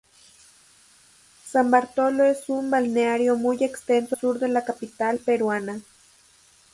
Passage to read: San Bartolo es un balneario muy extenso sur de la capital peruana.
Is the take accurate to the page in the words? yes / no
yes